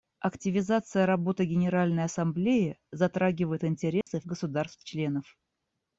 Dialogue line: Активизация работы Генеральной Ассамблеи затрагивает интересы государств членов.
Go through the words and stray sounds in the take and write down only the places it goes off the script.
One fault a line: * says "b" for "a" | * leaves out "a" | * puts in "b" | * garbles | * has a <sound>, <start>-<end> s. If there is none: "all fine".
* has a dropout, 4.0-4.1 s